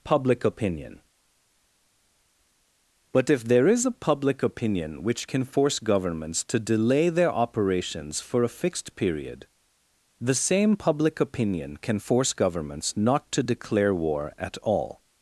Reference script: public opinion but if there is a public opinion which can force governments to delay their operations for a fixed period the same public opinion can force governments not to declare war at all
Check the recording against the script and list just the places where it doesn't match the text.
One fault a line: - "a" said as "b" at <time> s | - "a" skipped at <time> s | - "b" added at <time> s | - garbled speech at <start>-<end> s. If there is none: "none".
none